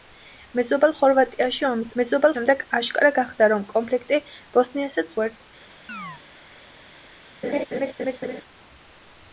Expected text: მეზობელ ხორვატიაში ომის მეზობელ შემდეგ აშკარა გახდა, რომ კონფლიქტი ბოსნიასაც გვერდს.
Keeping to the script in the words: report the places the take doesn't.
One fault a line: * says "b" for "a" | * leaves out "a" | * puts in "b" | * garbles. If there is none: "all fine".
all fine